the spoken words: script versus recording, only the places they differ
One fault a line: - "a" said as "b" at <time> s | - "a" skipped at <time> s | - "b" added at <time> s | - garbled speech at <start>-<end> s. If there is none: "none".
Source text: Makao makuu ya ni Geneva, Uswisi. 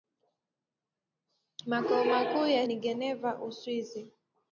none